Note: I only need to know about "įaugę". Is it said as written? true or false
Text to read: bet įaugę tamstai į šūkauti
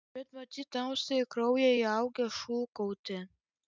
false